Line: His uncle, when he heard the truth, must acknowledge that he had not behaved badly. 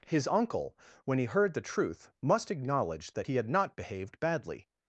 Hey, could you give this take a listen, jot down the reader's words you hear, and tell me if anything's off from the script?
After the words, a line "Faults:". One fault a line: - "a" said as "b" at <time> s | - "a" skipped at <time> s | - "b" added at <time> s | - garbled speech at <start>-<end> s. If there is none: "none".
His uncle, when he heard the truth, must acknowledge that he had not behaved badly.
Faults:
none